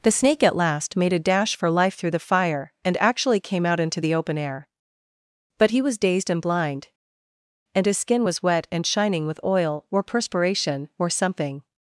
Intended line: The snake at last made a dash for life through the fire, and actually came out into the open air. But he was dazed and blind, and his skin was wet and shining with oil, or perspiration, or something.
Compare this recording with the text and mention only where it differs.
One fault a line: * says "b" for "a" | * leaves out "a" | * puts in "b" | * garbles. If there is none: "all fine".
all fine